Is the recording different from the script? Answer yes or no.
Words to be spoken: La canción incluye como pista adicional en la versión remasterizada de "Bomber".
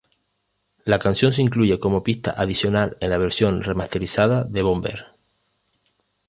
yes